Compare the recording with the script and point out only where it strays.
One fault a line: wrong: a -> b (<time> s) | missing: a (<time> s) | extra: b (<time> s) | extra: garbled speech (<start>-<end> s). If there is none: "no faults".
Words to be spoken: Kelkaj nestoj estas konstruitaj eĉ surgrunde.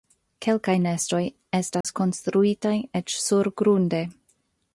no faults